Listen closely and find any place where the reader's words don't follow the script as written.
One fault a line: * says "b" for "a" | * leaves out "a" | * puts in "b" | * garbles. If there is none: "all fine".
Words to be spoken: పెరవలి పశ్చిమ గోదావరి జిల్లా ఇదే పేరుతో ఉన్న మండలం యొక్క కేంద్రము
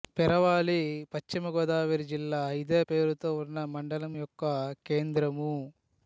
all fine